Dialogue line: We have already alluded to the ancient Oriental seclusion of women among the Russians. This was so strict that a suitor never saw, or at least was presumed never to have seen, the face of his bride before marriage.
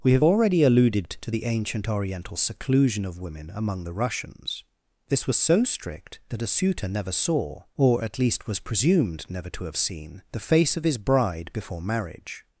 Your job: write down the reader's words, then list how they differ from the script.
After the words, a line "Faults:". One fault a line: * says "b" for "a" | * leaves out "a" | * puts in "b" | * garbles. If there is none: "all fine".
We have already alluded to the ancient Oriental seclusion of women among the Russians. This was so strict that a suitor never saw, or at least was presumed never to have seen, the face of his bride before marriage.
Faults:
all fine